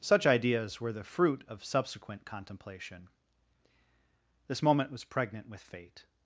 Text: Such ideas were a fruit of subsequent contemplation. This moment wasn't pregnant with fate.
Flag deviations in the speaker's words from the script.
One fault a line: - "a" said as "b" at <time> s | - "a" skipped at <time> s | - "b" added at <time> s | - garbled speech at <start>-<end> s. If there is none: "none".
- "a" said as "the" at 0.9 s
- "wasn't" said as "was" at 4.9 s